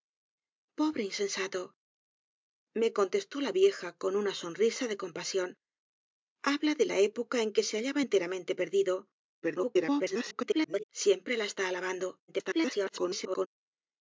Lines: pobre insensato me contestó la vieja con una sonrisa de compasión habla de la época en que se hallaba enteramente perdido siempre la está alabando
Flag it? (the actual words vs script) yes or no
yes